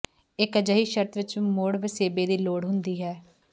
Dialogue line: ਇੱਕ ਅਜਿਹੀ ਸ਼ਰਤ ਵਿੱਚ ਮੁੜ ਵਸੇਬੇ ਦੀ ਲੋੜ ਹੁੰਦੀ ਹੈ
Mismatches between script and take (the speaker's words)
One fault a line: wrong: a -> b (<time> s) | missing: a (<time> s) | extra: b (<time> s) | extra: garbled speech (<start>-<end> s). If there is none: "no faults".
no faults